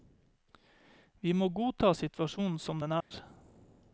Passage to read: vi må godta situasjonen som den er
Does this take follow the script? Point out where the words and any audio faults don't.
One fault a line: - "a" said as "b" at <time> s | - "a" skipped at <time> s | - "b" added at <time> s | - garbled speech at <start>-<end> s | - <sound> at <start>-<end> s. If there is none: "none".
- dropout at 3.0-3.1 s